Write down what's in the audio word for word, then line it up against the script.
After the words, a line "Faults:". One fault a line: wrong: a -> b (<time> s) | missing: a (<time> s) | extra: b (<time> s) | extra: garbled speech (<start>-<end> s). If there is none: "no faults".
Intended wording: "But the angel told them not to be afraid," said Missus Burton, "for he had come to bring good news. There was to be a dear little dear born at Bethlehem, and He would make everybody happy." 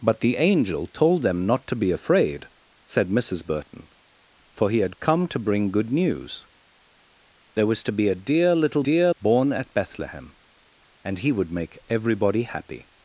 "But the angel told them not to be afraid," said Missus Burton, "for he had come to bring good news. There was to be a dear little dear born at Bethlehem, and He would make everybody happy."
Faults:
no faults